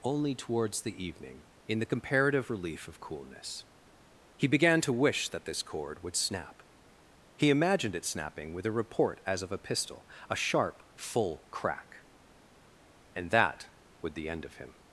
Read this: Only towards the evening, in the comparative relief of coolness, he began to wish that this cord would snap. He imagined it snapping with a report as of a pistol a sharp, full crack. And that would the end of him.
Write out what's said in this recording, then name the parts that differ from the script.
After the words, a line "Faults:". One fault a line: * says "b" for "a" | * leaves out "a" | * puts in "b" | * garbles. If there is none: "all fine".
Only towards the evening, in the comparative relief of coolness, he began to wish that this cord would snap. He imagined it snapping with a report as of a pistol a sharp, full crack. And that would the end of him.
Faults:
all fine